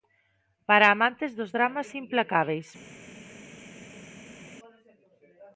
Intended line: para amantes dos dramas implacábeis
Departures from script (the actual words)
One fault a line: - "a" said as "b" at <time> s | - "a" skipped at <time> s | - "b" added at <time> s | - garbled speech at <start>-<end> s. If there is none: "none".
none